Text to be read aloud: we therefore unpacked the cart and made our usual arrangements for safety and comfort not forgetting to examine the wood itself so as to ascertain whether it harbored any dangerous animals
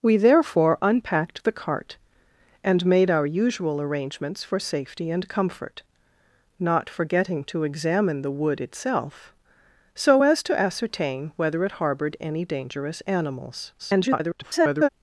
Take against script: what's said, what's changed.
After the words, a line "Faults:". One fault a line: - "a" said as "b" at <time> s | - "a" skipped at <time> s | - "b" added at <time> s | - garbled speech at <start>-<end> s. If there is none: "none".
we therefore unpacked the cart and made our usual arrangements for safety and comfort not forgetting to examine the wood itself so as to ascertain whether it harbored any dangerous animals [garbled]
Faults:
- garbled speech at 13.8-14.9 s